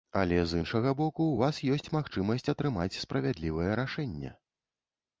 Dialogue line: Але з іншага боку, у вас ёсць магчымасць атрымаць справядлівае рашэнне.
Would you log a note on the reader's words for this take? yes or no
no